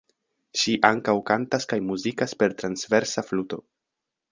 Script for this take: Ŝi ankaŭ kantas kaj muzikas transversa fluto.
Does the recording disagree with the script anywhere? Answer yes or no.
yes